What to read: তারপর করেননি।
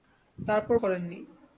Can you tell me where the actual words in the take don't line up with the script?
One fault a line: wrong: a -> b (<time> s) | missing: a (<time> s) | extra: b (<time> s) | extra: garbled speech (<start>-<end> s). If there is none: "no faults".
no faults